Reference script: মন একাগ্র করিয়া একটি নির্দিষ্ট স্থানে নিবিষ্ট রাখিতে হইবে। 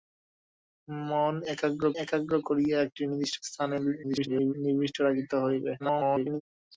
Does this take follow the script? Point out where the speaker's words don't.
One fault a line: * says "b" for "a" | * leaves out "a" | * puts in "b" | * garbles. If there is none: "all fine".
* puts in "একাগ্র"
* garbles
* garbles